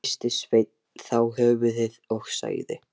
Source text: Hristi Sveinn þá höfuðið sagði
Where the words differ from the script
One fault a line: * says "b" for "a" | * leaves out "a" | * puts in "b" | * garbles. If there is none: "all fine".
* puts in "og"